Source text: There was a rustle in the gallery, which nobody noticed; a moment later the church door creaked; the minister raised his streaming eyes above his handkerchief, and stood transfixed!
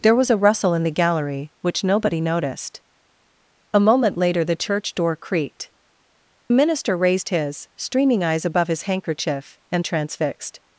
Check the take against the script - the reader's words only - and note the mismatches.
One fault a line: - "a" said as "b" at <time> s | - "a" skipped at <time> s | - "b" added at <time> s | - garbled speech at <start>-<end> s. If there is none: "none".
- "the" skipped at 5.7 s
- "stood" skipped at 9.8 s